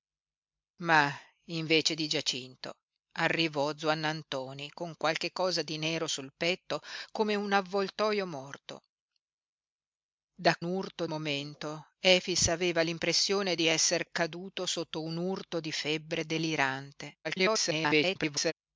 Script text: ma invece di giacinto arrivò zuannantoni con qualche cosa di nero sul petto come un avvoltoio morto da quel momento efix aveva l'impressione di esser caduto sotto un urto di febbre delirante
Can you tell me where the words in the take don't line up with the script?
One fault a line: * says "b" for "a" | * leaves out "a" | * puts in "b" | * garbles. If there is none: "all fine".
* says "urto" for "quel"
* garbles